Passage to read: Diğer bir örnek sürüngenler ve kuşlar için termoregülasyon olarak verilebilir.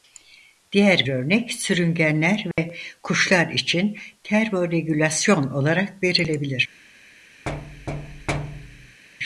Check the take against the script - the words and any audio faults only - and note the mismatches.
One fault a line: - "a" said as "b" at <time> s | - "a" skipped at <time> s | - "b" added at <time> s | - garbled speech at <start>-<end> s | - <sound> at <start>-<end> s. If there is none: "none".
- "bir" skipped at 1.1 s
- dropout at 2.5-2.6 s
- thud at 7.5-9.0 s